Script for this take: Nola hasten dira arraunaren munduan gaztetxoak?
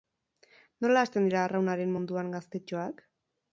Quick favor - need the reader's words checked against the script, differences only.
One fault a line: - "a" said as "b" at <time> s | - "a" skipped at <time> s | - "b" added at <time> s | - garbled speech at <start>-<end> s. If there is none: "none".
none